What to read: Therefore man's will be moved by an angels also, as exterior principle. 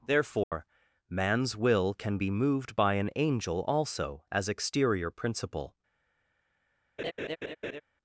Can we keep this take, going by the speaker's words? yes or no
no